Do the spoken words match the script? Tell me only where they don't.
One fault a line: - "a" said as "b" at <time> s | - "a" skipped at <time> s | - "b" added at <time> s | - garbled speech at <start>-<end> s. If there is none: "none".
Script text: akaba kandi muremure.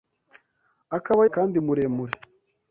none